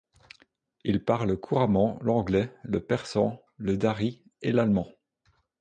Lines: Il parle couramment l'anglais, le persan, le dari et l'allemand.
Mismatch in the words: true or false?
false